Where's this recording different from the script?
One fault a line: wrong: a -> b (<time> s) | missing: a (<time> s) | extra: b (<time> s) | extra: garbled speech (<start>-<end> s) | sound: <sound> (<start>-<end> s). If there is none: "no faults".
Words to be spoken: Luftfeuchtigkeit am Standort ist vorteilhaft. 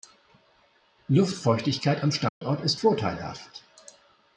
sound: dropout (2.3-2.4 s)